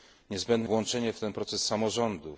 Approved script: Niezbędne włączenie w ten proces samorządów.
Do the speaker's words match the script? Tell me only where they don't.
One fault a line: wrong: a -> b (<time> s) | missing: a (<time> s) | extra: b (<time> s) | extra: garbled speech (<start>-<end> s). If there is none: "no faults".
no faults